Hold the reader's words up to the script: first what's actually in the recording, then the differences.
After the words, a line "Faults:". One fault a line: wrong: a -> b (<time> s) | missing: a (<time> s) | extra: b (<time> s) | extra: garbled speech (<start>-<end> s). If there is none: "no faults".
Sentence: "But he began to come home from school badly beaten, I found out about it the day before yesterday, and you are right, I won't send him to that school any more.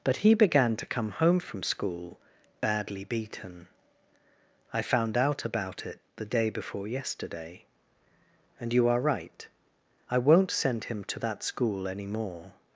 "But he began to come home from school badly beaten, I found out about it the day before yesterday, and you are right, I won't send him to that school any more.
Faults:
no faults